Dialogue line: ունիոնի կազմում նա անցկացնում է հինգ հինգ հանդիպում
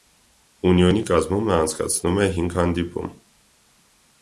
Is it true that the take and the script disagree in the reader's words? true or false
true